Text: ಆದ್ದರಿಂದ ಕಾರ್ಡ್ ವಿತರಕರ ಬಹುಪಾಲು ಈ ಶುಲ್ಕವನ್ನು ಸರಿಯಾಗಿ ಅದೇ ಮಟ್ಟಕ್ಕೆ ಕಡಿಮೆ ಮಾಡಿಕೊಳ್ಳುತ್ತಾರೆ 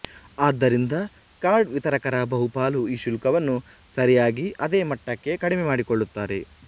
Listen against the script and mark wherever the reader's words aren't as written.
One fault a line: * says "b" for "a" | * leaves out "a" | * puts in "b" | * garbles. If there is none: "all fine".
all fine